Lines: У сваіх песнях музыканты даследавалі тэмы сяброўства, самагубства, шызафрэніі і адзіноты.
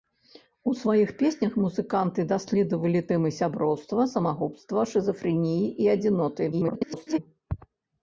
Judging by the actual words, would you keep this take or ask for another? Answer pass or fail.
fail